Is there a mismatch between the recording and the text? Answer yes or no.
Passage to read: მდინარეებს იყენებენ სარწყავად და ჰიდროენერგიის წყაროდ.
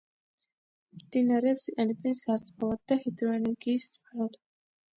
no